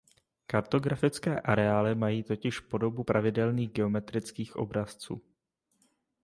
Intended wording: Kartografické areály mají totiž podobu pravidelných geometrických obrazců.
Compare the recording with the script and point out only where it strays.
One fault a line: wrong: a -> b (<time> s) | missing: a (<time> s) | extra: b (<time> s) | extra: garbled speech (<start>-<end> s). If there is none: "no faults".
no faults